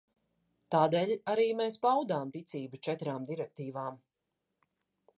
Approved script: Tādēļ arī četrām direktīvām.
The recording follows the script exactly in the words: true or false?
false